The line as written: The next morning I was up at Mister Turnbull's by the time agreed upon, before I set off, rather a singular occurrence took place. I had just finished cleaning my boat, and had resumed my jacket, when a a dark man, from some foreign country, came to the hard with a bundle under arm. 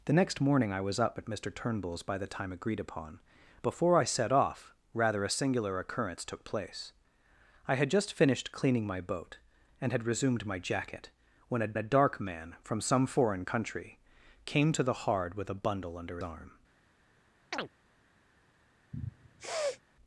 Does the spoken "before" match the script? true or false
true